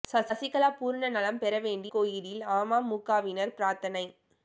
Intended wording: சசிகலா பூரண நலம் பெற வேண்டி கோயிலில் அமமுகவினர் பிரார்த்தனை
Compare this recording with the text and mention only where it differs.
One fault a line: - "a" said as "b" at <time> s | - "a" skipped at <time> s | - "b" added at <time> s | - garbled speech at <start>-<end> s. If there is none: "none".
none